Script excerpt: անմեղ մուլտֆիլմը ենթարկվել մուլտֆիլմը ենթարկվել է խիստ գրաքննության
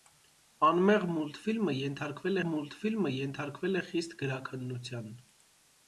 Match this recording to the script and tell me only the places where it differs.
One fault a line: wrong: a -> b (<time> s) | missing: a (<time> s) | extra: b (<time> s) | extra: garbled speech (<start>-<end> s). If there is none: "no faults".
no faults